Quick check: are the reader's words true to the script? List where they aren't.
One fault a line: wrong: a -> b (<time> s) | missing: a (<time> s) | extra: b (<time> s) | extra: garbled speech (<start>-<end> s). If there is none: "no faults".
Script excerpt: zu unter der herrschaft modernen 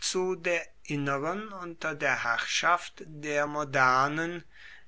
extra: der inneren (0.3 s)
extra: der (3.0 s)